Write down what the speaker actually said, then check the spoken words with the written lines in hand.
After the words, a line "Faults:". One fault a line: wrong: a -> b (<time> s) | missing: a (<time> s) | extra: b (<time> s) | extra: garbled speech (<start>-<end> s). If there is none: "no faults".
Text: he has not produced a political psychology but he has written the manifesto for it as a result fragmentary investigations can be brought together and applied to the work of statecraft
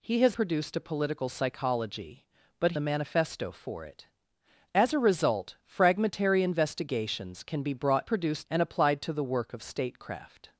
he has produced a political psychology but the manifesto for it as a result fragmentary investigations can be brought produced and applied to the work of statecraft
Faults:
missing: not (0.4 s)
missing: he has written (2.7 s)
wrong: together -> produced (8.1 s)